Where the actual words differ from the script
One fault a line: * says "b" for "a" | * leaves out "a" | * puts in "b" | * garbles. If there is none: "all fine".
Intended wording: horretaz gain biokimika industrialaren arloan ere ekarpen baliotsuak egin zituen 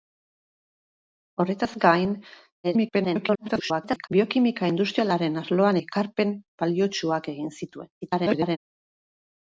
* garbles
* leaves out "ere"
* garbles